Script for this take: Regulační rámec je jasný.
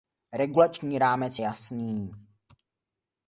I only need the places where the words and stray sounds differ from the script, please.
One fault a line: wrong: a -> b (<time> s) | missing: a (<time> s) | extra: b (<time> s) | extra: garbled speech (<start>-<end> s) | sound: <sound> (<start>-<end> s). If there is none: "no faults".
missing: je (1.4 s)